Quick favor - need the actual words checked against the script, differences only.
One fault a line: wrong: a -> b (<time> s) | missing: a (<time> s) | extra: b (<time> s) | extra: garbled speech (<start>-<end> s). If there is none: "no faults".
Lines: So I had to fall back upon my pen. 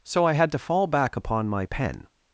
no faults